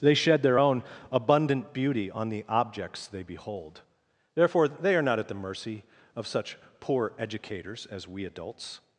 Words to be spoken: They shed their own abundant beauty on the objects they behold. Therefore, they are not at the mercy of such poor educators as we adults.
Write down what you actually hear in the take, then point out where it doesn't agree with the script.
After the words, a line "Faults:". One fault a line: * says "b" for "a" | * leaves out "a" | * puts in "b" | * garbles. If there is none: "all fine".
They shed their own abundant beauty on the objects they behold. Therefore, they are not at the mercy of such poor educators as we adults.
Faults:
all fine